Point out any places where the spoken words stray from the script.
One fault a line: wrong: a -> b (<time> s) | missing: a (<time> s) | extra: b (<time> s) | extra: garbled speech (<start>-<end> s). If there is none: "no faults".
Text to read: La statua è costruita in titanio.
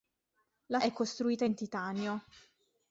missing: statua (0.8 s)